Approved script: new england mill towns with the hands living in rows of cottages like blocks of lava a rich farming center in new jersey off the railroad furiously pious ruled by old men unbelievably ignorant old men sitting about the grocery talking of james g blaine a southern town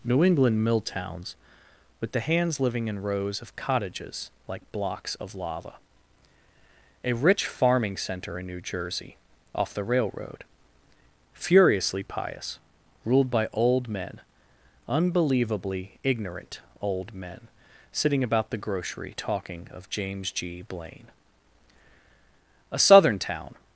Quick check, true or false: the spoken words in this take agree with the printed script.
true